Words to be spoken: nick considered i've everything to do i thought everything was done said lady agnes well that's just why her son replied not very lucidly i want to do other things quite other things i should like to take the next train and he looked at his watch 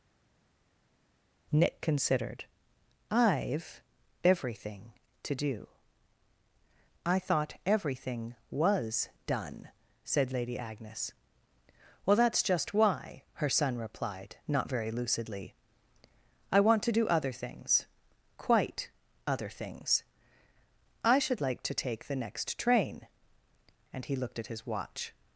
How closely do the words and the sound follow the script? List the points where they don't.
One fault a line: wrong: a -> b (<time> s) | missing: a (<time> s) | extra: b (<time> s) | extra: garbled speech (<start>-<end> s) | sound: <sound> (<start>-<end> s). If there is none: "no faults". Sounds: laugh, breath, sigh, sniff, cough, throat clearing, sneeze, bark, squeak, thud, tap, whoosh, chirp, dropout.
no faults